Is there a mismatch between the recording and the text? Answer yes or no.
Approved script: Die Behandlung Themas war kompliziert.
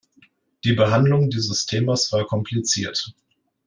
yes